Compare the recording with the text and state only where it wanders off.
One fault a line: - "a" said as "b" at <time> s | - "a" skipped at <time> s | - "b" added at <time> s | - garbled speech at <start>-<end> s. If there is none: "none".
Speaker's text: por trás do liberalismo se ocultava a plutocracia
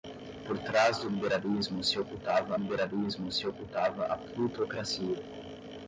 - "liberalismo se ocultava" added at 2.6 s